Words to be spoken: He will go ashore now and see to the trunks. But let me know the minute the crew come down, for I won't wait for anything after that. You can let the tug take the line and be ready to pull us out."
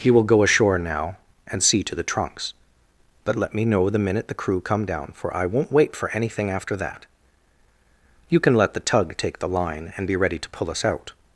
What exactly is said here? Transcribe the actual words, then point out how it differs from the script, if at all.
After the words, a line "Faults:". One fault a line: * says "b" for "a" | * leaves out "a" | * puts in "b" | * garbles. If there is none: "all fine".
He will go ashore now and see to the trunks. But let me know the minute the crew come down, for I won't wait for anything after that. You can let the tug take the line and be ready to pull us out."
Faults:
all fine